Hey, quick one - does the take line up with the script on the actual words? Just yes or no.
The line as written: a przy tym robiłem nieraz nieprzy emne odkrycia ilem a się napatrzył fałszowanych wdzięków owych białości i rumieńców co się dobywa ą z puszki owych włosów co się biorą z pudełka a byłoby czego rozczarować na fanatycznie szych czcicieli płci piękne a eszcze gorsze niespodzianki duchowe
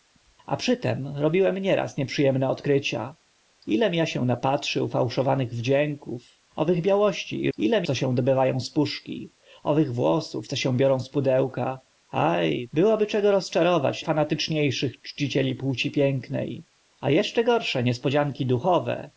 no